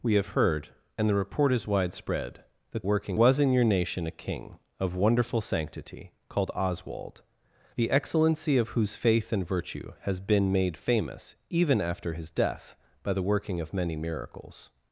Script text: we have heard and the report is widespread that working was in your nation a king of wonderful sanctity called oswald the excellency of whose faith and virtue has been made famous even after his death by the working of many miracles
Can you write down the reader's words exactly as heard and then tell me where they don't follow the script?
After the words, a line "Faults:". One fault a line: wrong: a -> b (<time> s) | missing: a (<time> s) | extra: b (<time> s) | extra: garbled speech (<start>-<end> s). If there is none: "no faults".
we have heard and the report is widespread that working was in your nation a king of wonderful sanctity called oswald the excellency of whose faith and virtue has been made famous even after his death by the working of many miracles
Faults:
no faults